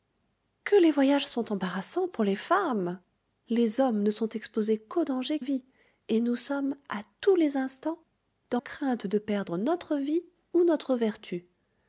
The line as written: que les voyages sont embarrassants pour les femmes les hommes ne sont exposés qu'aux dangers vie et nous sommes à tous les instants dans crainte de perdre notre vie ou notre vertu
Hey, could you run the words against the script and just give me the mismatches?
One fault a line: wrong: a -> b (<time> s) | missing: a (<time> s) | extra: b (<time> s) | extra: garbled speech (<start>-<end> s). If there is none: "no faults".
no faults